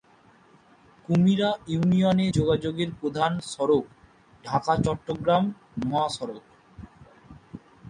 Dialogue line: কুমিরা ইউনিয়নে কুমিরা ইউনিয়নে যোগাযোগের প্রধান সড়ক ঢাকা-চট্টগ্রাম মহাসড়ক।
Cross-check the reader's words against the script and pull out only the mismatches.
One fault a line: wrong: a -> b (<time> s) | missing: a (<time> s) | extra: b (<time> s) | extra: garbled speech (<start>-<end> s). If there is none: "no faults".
missing: কুমিরা ইউনিয়নে (2.3 s)